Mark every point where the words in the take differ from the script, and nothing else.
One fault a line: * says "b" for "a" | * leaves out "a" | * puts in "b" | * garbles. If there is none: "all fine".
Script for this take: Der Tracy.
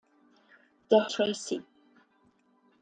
all fine